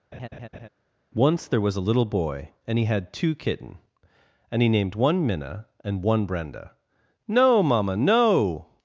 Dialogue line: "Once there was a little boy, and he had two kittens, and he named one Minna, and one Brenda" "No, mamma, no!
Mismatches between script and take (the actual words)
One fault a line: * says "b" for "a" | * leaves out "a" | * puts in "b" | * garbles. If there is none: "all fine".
* says "kitten" for "kittens"